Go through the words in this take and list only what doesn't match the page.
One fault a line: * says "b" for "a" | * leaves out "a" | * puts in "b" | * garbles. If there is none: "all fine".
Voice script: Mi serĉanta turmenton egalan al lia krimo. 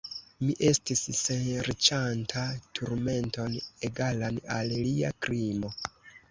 * puts in "estis"